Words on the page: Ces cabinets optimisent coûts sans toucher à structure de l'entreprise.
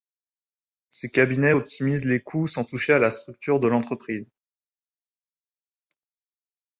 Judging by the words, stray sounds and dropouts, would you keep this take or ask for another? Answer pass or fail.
fail